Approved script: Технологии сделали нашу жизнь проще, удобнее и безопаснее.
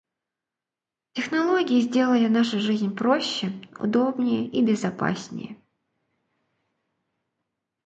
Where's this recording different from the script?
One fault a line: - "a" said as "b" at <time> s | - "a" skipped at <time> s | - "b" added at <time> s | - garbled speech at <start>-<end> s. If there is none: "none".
none